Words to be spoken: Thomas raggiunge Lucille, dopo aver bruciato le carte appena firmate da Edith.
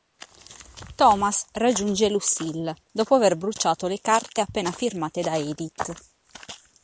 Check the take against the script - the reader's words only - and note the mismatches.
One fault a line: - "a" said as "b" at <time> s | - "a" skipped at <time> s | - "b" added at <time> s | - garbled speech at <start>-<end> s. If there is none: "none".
none